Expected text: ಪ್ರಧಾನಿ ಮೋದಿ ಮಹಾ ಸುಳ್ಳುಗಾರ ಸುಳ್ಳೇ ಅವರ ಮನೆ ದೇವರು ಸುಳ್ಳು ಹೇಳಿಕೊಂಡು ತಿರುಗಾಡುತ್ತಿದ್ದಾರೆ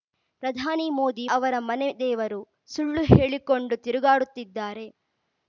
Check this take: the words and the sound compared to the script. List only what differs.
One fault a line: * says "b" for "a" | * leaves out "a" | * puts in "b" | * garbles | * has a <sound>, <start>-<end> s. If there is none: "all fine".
* leaves out "ಮಹಾ ಸುಳ್ಳುಗಾರ ಸುಳ್ಳೇ"